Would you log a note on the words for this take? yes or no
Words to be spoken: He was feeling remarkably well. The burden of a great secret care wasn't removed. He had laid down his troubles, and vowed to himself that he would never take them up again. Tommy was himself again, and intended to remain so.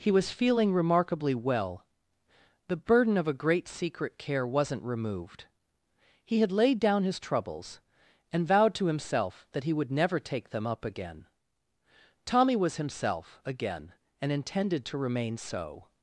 no